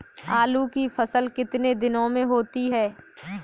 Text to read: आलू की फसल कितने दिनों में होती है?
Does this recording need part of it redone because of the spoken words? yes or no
no